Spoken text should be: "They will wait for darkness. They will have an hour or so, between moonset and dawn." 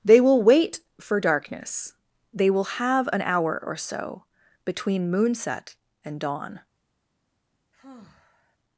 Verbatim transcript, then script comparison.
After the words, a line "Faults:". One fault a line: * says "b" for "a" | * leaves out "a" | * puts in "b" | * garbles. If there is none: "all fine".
"They will wait for darkness. They will have an hour or so, between moonset and dawn."
Faults:
all fine